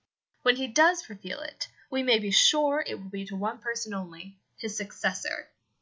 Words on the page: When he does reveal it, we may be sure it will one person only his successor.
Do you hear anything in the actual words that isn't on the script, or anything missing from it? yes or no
yes